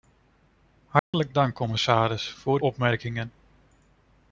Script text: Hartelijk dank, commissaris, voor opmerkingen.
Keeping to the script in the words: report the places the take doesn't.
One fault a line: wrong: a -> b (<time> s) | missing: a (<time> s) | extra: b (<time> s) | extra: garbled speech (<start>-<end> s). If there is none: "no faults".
no faults